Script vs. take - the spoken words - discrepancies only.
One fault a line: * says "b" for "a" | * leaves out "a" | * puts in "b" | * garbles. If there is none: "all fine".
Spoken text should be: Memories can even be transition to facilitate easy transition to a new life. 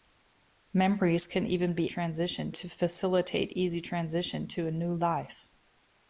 all fine